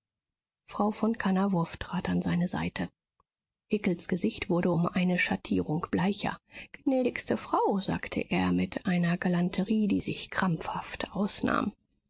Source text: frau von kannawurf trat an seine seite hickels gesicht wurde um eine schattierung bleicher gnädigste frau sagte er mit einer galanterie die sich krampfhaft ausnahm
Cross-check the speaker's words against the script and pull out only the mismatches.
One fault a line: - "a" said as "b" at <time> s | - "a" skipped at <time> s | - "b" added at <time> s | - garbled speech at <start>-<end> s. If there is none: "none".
none